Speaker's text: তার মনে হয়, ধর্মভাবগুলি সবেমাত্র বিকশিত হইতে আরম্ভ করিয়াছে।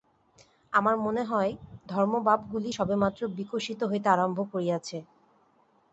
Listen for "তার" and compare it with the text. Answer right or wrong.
wrong